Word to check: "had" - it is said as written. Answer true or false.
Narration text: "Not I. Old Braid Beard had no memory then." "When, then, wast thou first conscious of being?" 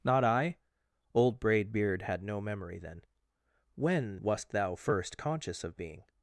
true